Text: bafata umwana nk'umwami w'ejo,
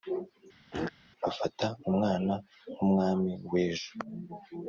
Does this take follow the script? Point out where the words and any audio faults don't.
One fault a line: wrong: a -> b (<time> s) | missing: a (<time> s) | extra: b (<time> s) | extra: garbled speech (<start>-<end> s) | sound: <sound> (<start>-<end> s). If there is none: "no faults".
sound: throat clearing (0.7-0.9 s)